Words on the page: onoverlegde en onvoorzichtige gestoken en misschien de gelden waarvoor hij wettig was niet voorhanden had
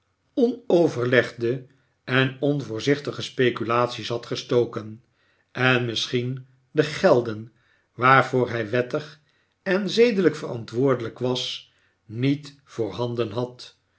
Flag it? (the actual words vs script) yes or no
yes